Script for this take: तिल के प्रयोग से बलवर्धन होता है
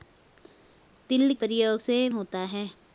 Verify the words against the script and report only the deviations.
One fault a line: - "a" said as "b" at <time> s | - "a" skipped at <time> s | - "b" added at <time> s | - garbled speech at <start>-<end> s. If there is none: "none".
- "के" skipped at 1.3 s
- "बलवर्धन" skipped at 2.1 s